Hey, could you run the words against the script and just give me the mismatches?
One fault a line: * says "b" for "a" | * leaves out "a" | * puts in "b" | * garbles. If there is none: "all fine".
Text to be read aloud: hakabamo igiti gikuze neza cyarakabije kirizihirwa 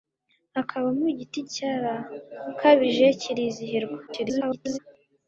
* leaves out "gikuze neza"
* garbles